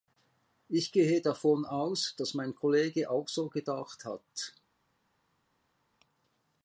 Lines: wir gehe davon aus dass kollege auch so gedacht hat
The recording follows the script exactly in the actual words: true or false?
false